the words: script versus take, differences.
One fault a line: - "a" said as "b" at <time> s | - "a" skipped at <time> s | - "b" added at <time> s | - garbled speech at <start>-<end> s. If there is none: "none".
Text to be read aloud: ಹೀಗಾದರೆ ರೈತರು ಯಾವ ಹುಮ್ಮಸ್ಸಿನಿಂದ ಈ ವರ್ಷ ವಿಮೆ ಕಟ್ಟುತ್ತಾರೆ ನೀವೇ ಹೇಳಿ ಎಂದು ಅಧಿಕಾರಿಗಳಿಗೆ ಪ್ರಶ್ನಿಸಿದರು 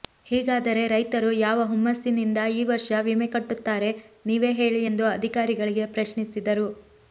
none